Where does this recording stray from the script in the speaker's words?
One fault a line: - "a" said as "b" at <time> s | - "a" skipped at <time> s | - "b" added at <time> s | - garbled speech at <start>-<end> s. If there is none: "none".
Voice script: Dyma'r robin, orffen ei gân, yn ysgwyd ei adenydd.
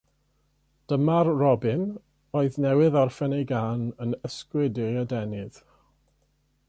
- "oedd newydd" added at 2.4 s